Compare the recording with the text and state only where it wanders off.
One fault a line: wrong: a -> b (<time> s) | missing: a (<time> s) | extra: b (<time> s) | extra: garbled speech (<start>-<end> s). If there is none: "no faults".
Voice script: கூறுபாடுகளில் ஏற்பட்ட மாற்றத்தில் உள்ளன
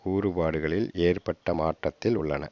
no faults